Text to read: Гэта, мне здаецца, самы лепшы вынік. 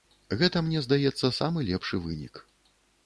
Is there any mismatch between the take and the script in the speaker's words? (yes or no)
no